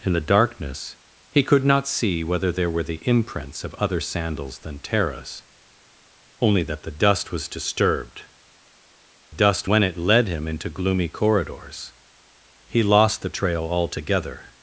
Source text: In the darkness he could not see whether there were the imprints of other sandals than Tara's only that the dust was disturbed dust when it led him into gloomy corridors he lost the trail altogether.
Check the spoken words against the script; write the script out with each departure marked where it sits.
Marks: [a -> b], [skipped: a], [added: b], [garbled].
In the darkness he could not see whether there were the imprints of other sandals than Tara's only that the dust was disturbed dust when it led him into gloomy corridors he lost the trail altogether.